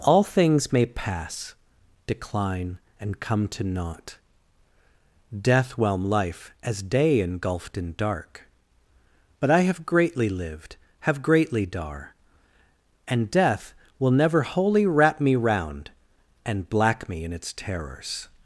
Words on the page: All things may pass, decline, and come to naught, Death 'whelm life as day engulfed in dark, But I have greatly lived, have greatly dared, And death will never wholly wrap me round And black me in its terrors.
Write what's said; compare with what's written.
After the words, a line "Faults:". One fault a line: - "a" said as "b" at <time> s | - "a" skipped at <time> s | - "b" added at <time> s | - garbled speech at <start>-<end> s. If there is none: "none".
All things may pass, decline, and come to naught, Death 'whelm life as day engulfed in dark, But I have greatly lived, have greatly dar, And death will never wholly wrap me round And black me in its terrors.
Faults:
- "dared" said as "dar" at 11.7 s